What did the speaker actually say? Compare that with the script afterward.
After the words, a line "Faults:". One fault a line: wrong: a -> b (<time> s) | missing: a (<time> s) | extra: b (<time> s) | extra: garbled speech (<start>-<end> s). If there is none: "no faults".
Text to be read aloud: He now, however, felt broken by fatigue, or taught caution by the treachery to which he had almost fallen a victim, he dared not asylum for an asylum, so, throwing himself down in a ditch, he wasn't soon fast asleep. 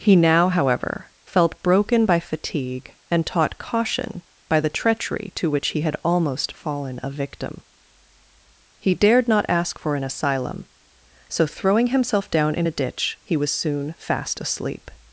He now, however, felt broken by fatigue, and taught caution by the treachery to which he had almost fallen a victim, he dared not ask for an asylum, so, throwing himself down in a ditch, he was soon fast asleep.
Faults:
wrong: or -> and (3.1 s)
wrong: asylum -> ask (9.5 s)
wrong: wasn't -> was (13.3 s)